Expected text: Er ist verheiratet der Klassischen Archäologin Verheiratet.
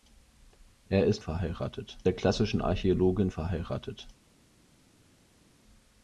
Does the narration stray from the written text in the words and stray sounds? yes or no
no